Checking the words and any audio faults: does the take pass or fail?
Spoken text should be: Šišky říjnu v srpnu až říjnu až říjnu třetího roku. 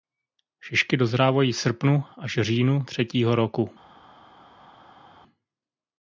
fail